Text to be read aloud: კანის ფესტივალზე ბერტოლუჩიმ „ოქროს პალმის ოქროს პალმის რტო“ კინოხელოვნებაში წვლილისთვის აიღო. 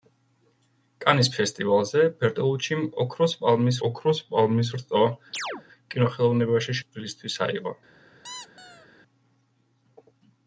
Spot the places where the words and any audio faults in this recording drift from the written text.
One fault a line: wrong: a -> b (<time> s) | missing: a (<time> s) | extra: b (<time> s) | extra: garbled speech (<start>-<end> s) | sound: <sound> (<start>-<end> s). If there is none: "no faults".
sound: chirp (5.3-5.6 s)
sound: squeak (8.2-8.9 s)